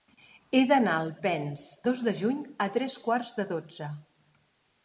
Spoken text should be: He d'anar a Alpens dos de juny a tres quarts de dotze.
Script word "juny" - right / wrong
right